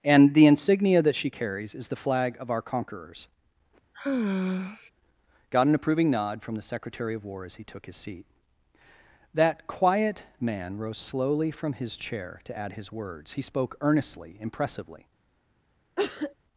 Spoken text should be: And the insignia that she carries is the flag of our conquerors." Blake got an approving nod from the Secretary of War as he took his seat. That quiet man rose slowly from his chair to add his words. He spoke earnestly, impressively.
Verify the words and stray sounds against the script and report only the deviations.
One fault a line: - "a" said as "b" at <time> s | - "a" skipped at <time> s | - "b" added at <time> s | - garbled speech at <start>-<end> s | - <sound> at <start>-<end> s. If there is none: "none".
- "Blake" skipped at 3.3 s
- sigh at 3.9-4.9 s
- cough at 16.0-16.3 s